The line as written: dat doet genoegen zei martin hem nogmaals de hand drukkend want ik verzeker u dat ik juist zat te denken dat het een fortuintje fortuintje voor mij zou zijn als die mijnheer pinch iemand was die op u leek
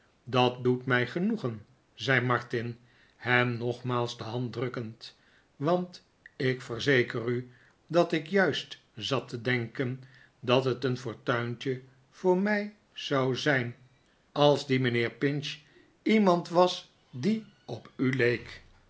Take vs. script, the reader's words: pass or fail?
fail